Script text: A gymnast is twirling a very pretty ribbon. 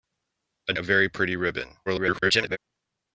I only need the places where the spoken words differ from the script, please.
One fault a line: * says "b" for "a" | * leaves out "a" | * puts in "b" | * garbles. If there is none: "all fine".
* leaves out "gymnast is twirling"
* garbles